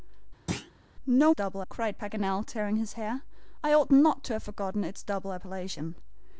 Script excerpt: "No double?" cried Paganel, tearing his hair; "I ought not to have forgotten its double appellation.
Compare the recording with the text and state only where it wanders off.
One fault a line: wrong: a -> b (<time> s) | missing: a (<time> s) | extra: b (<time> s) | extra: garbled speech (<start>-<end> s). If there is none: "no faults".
no faults